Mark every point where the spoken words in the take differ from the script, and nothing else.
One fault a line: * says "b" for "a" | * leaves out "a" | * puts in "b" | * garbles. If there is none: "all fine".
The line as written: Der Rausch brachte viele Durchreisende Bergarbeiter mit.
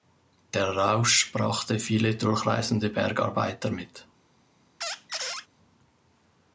all fine